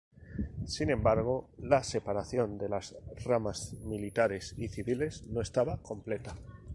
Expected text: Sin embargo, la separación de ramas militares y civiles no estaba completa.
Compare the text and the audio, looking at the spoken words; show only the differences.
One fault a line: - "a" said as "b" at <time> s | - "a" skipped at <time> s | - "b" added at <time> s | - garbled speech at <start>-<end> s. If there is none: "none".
- "las" added at 2.7 s